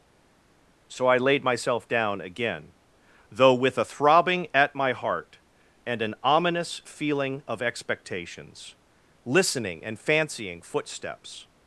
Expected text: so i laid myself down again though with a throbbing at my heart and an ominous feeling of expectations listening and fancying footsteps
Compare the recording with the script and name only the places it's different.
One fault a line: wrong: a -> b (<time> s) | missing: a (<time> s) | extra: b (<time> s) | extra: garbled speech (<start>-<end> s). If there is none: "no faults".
no faults